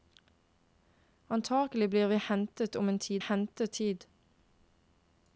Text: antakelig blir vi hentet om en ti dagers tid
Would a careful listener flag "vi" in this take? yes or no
no